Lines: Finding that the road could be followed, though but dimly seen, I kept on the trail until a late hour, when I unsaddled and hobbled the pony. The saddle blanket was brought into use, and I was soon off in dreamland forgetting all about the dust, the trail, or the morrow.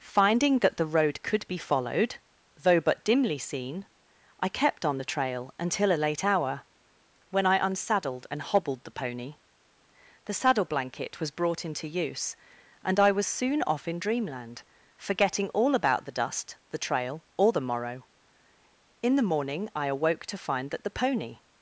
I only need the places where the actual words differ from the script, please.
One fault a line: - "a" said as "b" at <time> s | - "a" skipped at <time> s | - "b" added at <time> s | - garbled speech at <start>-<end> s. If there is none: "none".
- "In the morning I awoke to find that the pony" added at 19.0 s